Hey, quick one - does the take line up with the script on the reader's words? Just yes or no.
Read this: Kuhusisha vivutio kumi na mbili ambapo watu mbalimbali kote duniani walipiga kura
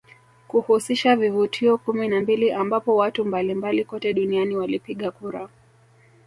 yes